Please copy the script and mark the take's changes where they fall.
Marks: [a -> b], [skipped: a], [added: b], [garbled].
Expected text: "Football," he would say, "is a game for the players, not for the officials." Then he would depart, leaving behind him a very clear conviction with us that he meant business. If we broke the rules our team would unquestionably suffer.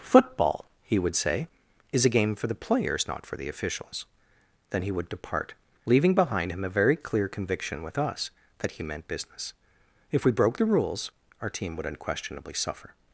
"Football," he would say, "is a game for the players, not for the officials." Then he would depart, leaving behind him a very clear conviction with us that he meant business. If we broke the rules our team would unquestionably suffer.